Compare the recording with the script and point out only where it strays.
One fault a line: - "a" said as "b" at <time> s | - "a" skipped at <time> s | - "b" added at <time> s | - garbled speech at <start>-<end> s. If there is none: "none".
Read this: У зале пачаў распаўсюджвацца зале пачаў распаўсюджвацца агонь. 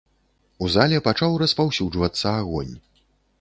- "зале пачаў распаўсюджвацца" skipped at 2.3 s